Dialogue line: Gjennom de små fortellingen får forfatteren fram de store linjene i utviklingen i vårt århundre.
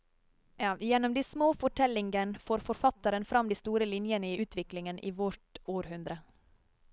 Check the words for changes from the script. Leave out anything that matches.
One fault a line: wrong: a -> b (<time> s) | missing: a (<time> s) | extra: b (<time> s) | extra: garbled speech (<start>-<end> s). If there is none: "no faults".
no faults